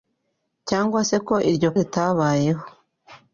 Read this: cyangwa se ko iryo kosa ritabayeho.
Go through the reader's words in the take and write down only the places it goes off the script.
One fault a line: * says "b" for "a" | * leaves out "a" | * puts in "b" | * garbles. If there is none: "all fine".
* leaves out "kosa"